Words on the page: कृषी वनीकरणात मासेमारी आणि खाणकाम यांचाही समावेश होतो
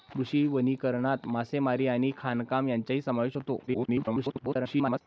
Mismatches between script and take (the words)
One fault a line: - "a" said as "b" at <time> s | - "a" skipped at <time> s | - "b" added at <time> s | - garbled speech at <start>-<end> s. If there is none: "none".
- garbled speech at 3.7-5.0 s